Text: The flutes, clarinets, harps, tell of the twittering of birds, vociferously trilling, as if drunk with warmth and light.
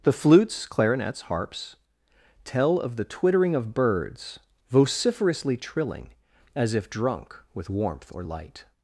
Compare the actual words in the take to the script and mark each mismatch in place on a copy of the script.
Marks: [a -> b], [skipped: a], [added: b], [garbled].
The flutes, clarinets, harps, tell of the twittering of birds, vociferously trilling, as if drunk with warmth [and -> or] light.